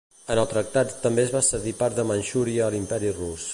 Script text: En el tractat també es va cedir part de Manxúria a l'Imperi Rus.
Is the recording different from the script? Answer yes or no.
no